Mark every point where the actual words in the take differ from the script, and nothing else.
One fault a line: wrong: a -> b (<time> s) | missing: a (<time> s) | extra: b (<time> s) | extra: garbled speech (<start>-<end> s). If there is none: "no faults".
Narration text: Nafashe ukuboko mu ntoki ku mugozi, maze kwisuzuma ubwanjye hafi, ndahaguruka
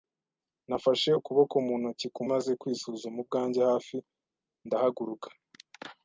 missing: mugozi (2.2 s)